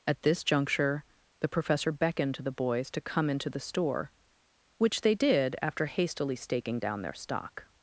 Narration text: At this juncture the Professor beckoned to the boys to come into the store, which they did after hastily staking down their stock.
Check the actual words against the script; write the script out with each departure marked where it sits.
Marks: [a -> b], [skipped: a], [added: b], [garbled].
At this juncture the Professor beckoned to the boys to come into the store, which they did after hastily staking down their stock.